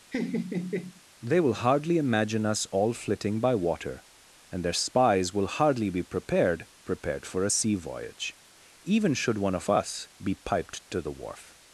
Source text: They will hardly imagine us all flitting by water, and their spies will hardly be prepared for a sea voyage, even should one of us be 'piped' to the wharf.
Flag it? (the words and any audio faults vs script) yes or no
yes